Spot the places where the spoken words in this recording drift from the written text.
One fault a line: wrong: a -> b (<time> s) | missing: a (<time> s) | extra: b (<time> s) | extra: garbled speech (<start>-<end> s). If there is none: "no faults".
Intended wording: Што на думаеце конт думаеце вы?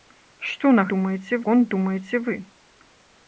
no faults